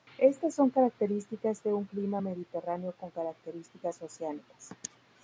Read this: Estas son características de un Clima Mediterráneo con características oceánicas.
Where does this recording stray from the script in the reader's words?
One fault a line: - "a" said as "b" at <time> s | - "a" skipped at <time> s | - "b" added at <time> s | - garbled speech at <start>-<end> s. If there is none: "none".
none